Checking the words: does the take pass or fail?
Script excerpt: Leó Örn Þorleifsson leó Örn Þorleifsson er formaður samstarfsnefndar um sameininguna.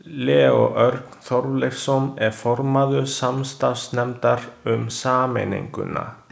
fail